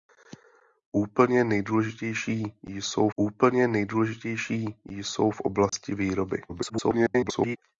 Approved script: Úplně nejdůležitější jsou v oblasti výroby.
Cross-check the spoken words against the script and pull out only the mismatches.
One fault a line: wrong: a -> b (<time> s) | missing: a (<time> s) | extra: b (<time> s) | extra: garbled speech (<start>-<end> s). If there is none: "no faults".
extra: úplně nejdůležitější jsou (3.1 s)
extra: garbled speech (6.5-7.6 s)